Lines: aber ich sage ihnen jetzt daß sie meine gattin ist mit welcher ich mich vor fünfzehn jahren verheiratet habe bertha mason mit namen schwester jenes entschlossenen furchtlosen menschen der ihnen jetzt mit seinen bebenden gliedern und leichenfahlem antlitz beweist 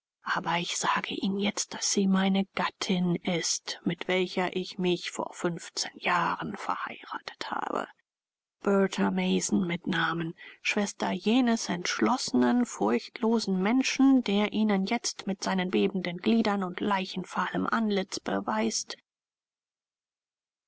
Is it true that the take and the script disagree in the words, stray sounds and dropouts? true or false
false